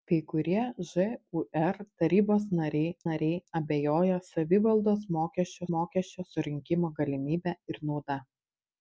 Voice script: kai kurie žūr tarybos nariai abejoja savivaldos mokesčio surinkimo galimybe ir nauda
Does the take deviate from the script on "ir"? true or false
false